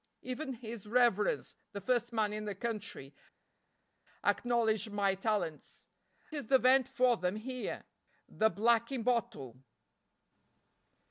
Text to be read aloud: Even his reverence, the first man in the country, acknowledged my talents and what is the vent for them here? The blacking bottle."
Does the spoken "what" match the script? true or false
false